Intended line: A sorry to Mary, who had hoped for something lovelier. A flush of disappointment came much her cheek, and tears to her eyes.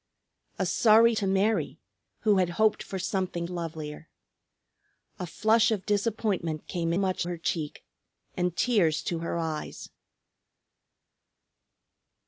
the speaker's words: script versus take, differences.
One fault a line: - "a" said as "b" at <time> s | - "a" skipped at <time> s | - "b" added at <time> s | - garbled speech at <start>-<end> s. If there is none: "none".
none